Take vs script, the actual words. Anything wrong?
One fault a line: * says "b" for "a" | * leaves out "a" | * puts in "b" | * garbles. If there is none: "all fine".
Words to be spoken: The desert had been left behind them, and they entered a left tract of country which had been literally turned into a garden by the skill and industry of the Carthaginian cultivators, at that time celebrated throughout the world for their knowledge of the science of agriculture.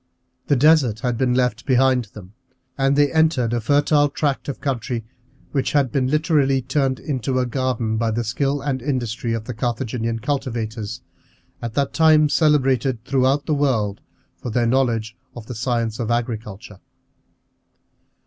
* says "fertile" for "left"